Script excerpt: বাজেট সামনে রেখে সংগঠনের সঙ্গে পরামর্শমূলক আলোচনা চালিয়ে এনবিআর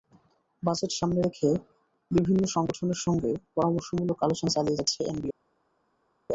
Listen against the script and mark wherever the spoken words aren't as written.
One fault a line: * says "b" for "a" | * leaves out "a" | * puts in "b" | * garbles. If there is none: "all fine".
* puts in "বিভিন্ন"
* puts in "যাচ্ছে"